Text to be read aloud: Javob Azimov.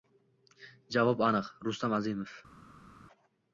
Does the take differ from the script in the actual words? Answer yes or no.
yes